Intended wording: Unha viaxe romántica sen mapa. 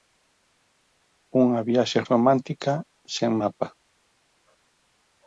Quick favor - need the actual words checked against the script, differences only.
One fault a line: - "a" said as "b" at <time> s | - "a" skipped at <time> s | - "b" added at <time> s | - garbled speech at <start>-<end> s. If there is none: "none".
none